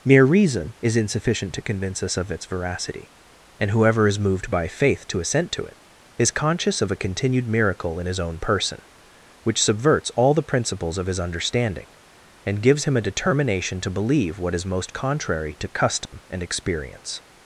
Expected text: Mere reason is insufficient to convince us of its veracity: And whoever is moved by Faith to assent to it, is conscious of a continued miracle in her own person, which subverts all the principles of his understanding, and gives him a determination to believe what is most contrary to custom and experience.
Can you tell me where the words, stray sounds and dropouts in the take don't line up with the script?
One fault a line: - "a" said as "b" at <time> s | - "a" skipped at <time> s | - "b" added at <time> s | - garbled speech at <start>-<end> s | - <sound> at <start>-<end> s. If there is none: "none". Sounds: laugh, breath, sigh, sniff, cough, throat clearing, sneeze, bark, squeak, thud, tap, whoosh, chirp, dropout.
- "her" said as "his" at 8.1 s
- dropout at 16.1-16.1 s